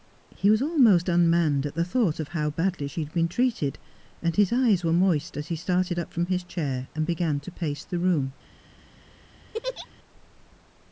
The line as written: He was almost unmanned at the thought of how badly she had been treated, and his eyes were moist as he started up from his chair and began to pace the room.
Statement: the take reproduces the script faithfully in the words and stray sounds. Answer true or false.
false